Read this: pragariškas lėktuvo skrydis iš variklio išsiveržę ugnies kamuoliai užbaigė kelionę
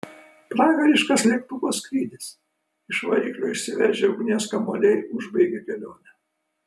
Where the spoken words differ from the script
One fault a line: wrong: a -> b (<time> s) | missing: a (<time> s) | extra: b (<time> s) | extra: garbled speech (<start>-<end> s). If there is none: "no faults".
no faults